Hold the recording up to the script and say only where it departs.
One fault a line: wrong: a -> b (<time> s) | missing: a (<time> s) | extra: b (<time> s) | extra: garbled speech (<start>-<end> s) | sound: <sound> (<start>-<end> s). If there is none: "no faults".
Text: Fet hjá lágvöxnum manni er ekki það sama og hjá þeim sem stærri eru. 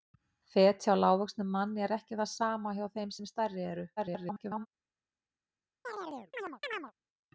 extra: garbled speech (4.0-4.7 s)
sound: chirp (5.8-6.9 s)